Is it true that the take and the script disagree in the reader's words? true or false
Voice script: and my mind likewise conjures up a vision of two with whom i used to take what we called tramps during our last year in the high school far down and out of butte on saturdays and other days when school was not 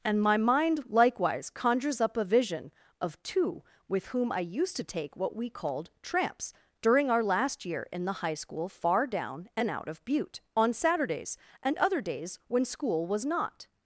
false